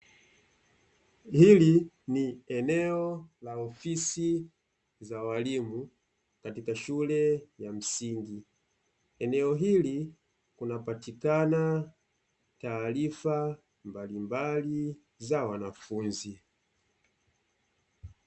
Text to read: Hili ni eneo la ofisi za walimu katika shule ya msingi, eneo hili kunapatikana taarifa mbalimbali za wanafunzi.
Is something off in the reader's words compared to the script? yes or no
no